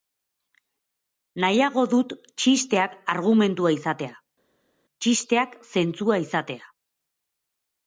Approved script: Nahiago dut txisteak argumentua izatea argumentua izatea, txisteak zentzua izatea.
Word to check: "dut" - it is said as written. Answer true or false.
true